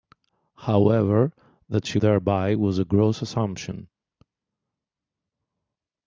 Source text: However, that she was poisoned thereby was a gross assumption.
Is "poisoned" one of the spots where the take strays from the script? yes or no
yes